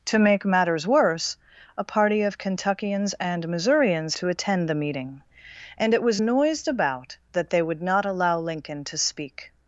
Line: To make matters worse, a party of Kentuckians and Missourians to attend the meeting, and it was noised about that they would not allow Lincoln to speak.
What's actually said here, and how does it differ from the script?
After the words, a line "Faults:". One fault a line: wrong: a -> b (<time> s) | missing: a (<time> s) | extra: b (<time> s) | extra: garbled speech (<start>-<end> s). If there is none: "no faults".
To make matters worse, a party of Kentuckians and Missourians to attend the meeting, and it was noised about that they would not allow Lincoln to speak.
Faults:
no faults